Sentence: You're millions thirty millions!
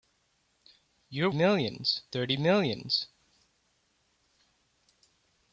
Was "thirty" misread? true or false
false